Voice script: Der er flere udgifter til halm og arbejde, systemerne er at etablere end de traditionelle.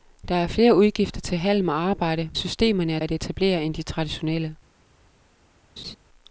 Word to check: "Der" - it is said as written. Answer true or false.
true